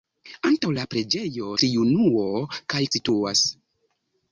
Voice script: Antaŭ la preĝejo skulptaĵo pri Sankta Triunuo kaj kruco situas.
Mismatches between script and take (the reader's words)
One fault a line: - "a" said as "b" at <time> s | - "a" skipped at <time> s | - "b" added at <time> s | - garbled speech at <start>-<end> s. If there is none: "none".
- "skulptaĵo pri Sankta" skipped at 1.5 s
- "kruco" skipped at 2.8 s